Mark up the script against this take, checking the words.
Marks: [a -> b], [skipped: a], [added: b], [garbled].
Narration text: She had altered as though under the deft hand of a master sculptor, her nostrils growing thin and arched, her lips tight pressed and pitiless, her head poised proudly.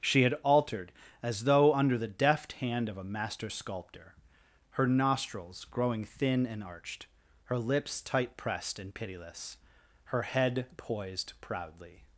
She had altered as though under the deft hand of a master sculptor, her nostrils growing thin and arched, her lips tight pressed and pitiless, her head poised proudly.